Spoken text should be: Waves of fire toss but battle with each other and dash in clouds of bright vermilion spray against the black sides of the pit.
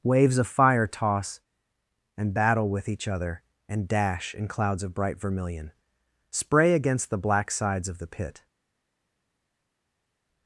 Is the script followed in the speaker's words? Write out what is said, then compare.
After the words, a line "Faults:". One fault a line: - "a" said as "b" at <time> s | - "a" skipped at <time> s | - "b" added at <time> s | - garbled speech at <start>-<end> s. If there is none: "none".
Waves of fire toss and battle with each other and dash in clouds of bright vermilion spray against the black sides of the pit.
Faults:
- "but" said as "and" at 2.2 s